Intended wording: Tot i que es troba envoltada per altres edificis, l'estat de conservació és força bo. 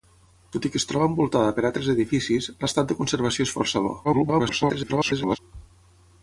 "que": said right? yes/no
yes